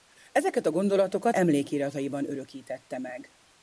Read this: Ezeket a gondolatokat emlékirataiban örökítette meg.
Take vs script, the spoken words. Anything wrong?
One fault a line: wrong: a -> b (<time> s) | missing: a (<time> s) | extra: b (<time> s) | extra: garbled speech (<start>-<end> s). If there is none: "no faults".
no faults